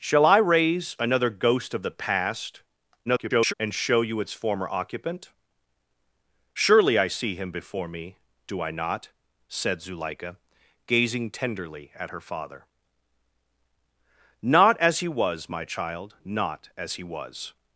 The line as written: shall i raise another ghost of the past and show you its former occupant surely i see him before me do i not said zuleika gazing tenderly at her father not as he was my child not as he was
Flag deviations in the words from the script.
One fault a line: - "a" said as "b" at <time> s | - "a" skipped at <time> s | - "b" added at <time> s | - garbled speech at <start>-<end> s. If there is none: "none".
- garbled speech at 3.1-3.5 s